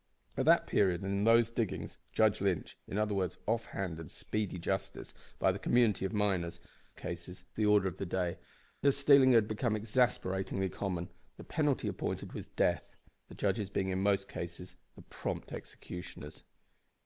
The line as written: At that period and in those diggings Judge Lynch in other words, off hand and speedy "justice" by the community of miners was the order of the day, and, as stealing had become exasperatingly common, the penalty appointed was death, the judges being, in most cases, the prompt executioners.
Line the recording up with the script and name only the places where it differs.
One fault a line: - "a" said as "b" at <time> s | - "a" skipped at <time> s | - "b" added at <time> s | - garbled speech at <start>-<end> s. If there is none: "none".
- "was" said as "cases" at 7.0 s
- "and" skipped at 8.4 s